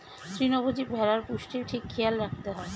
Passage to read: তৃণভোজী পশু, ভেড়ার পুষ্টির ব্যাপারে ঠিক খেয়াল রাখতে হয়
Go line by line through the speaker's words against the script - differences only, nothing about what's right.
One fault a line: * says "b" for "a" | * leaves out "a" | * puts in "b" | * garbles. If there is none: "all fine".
* leaves out "পশু"
* leaves out "ব্যাপারে"